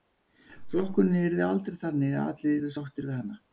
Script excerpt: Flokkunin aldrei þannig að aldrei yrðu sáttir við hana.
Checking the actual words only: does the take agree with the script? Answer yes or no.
no